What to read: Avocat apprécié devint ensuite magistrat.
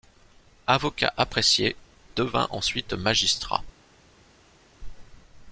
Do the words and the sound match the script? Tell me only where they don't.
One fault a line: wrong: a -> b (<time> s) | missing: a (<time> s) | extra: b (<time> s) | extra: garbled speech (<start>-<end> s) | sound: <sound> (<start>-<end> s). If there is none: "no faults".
no faults